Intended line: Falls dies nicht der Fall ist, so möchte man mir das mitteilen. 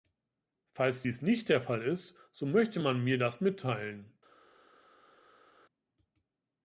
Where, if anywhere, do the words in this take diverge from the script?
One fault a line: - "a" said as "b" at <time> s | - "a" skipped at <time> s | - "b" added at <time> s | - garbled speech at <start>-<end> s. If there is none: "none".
none